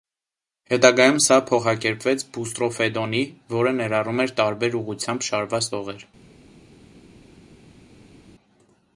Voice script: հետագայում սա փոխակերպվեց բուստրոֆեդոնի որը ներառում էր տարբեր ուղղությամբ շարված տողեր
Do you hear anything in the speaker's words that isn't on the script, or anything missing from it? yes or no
no